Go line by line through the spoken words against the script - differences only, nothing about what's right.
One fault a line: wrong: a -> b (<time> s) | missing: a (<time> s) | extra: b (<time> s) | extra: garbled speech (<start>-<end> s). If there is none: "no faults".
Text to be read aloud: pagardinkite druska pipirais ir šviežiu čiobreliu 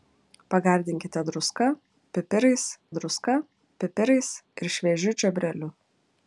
extra: druska pipirais (3.0 s)